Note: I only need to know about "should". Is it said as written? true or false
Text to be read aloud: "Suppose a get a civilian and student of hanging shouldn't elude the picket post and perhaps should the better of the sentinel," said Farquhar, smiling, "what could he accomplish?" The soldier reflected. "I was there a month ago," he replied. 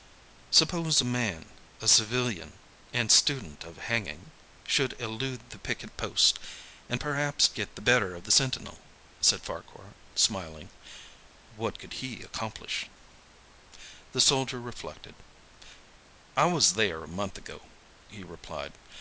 false